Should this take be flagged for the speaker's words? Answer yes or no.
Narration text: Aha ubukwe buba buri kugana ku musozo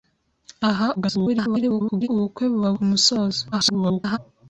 yes